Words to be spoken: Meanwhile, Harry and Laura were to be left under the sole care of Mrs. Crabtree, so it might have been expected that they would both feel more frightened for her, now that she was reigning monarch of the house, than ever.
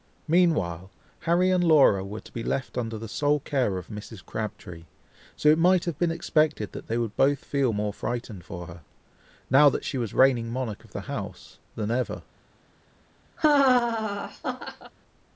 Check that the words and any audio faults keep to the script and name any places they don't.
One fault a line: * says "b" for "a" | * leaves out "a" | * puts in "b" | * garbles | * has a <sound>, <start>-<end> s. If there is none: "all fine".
* has a laugh, 13.4-14.9 s